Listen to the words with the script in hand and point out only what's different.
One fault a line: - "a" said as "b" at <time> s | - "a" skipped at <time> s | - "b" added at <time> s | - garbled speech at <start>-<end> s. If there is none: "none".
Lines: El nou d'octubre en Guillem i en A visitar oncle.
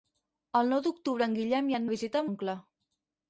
none